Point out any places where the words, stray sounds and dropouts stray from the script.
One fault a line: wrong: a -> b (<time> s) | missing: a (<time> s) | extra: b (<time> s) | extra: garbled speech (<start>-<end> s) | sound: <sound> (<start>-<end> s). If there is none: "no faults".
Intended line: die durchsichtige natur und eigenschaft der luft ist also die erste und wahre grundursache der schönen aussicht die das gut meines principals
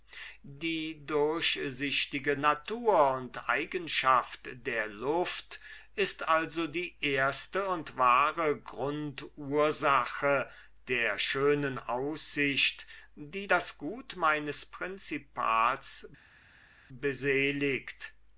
no faults